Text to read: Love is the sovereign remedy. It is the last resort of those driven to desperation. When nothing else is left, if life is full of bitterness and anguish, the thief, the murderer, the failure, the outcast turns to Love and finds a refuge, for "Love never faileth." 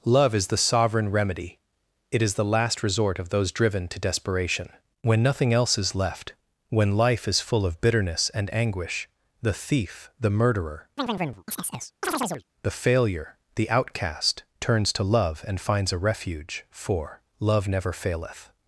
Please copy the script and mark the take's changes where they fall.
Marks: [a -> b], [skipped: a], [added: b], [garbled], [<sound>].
Love is the sovereign remedy. It is the last resort of those driven to desperation. When nothing else is left, [if -> when] life is full of bitterness and anguish, the thief, the murderer, [chirp] the failure, the outcast turns to Love and finds a refuge, for "Love never faileth."